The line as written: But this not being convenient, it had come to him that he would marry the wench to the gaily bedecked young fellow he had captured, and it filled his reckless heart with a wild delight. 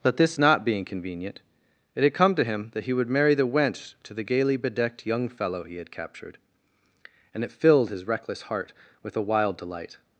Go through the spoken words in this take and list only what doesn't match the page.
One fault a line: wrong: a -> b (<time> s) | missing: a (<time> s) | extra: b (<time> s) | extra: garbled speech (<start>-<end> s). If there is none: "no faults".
no faults